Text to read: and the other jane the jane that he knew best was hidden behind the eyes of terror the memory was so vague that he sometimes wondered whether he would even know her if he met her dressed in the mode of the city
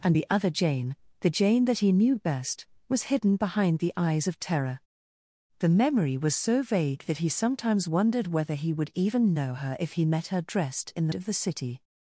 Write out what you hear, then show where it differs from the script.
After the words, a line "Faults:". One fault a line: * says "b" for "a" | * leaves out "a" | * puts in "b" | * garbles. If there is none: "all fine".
and the other jane the jane that he knew best was hidden behind the eyes of terror the memory was so vague that he sometimes wondered whether he would even know her if he met her dressed in the of the city
Faults:
* leaves out "mode"